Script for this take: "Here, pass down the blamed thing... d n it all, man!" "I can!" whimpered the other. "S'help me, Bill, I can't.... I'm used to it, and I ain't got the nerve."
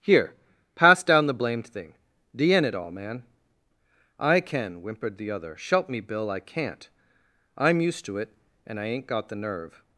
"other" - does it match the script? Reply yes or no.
yes